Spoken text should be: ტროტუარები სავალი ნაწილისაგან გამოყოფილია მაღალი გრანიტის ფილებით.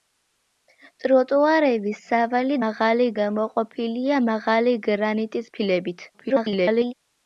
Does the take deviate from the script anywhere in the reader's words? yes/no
yes